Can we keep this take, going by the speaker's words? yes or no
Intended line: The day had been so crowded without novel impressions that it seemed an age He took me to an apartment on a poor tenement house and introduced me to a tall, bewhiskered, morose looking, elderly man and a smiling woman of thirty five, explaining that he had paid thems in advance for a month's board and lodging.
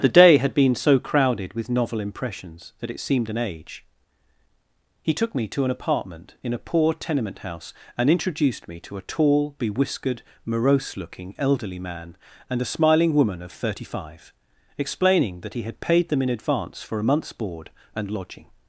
no